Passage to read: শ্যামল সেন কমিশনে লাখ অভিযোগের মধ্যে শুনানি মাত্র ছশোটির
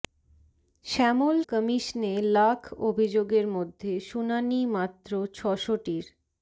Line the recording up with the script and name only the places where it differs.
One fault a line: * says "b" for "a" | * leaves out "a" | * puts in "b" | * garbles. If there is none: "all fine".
* leaves out "সেন"